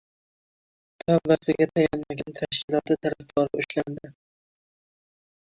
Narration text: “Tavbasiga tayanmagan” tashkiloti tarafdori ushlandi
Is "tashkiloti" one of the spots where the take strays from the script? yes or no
no